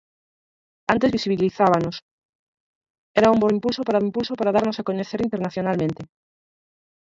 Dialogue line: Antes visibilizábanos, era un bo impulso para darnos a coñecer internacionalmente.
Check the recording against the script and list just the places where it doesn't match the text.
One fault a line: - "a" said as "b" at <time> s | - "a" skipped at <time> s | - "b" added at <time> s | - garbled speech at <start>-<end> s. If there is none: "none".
- "impulso para" added at 4.1 s